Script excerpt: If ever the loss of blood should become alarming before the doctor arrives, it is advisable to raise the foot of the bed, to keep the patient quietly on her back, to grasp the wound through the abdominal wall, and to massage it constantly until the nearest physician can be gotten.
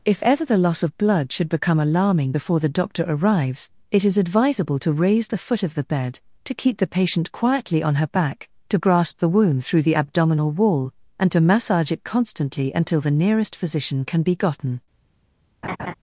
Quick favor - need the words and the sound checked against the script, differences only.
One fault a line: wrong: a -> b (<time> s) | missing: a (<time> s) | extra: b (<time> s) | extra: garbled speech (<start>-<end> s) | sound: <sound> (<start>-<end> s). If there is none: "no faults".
sound: laugh (15.6-15.9 s)